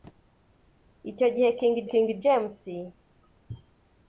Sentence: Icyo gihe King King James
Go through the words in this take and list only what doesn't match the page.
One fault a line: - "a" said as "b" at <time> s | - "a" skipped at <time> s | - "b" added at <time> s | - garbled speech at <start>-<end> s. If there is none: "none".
none